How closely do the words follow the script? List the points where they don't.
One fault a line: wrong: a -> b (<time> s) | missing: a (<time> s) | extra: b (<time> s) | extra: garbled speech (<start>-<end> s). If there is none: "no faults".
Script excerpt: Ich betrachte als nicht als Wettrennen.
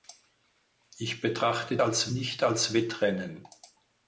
no faults